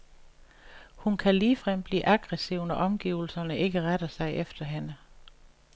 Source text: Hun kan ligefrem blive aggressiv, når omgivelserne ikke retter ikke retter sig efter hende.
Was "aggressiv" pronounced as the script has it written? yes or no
yes